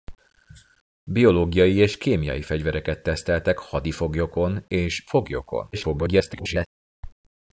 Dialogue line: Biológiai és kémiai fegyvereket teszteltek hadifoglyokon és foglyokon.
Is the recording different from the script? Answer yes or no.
yes